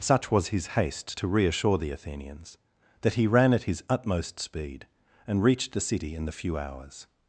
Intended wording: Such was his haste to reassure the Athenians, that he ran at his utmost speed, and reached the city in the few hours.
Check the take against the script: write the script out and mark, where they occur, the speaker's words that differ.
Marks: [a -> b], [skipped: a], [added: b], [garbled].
Such was his haste to reassure the Athenians, that he ran at his utmost speed, and reached the city in the few hours.